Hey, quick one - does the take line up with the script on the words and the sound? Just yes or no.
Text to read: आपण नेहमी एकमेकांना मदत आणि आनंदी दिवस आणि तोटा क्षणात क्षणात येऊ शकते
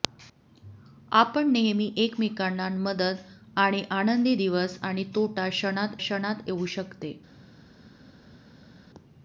yes